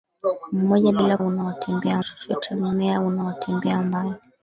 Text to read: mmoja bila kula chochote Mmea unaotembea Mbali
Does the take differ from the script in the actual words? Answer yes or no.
yes